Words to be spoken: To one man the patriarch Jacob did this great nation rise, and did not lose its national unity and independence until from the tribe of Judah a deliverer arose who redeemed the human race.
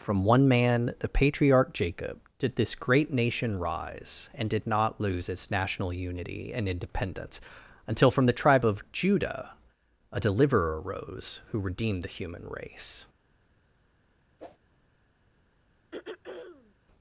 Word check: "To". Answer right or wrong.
wrong